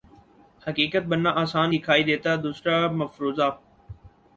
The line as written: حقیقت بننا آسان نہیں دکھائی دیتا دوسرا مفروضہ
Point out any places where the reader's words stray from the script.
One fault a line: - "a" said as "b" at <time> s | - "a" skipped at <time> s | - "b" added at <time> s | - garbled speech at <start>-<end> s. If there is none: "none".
- "نہیں" skipped at 1.7 s